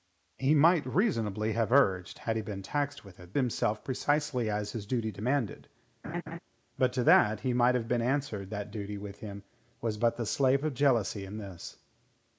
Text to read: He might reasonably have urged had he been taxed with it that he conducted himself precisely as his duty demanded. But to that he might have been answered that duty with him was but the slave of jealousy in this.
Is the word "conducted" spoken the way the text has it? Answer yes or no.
no